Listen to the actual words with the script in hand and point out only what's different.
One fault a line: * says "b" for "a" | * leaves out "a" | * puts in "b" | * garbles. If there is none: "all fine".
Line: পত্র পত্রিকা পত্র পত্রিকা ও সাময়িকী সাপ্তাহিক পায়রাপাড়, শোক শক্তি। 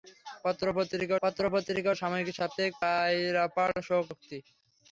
all fine